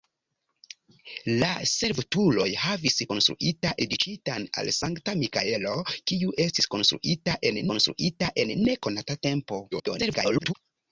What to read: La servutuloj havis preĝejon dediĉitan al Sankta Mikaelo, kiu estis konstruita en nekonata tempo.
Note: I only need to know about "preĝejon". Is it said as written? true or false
false